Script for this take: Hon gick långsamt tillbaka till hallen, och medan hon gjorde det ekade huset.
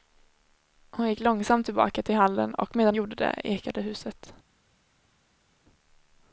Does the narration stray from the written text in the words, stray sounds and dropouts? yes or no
yes